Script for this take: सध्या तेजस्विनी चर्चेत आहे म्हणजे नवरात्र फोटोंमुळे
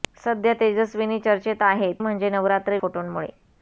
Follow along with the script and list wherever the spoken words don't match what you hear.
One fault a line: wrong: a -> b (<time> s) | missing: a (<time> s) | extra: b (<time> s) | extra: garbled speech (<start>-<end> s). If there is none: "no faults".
no faults